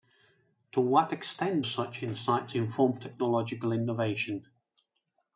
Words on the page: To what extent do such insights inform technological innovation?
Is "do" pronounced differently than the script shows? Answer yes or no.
yes